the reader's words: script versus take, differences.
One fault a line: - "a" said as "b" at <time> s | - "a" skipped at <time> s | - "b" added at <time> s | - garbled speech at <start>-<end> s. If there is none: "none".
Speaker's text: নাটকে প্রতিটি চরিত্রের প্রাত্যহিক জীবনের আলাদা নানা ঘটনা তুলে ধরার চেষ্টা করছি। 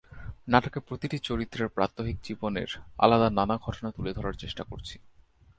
none